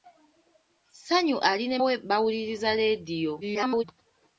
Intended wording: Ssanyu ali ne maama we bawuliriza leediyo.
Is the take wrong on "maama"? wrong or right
wrong